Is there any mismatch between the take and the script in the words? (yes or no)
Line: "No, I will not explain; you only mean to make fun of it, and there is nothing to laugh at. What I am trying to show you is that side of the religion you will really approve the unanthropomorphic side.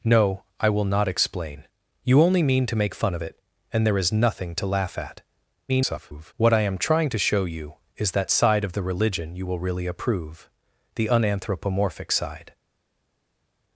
yes